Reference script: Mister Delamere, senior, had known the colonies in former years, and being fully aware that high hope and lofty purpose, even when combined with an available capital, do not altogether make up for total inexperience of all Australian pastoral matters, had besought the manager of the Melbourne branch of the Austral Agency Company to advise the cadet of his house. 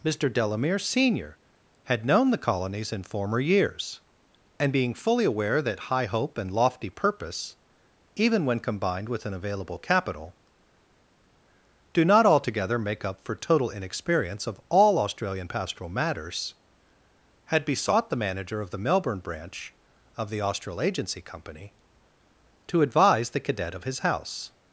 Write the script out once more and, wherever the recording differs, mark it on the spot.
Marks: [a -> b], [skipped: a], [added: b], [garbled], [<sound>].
Mister Delamere, senior, had known the colonies in former years, and being fully aware that high hope and lofty purpose, even when combined with an available capital, do not altogether make up for total inexperience of all Australian pastoral matters, had besought the manager of the Melbourne branch of the Austral Agency Company to advise the cadet of his house.